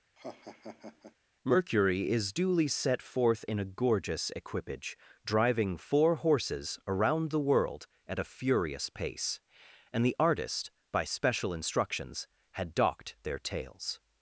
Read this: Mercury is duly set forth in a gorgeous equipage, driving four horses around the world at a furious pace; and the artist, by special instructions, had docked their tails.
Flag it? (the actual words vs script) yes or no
no